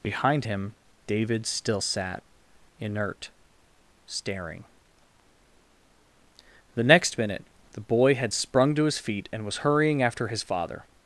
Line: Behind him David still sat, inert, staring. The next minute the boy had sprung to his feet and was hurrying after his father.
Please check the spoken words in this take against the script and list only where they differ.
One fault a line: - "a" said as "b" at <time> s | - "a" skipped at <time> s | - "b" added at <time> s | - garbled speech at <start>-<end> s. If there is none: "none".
none